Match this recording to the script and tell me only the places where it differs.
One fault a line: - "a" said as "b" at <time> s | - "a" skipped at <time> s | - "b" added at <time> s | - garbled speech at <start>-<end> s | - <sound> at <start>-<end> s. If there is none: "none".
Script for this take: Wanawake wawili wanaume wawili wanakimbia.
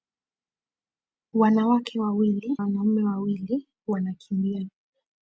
none